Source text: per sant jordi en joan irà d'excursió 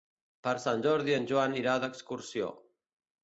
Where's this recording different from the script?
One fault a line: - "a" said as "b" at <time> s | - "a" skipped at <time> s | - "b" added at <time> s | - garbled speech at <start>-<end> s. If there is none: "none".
none